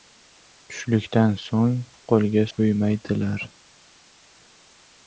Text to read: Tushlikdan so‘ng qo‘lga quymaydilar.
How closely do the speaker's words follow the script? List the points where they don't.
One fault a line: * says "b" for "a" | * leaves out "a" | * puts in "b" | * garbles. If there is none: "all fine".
all fine